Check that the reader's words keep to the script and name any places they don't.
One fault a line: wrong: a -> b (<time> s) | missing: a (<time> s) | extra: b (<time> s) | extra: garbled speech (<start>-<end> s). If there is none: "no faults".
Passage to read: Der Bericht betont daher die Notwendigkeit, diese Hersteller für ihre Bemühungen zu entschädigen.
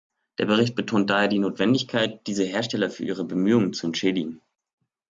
no faults